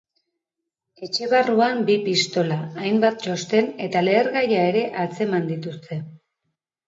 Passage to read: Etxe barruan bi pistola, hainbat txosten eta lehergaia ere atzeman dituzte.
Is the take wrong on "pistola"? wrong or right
right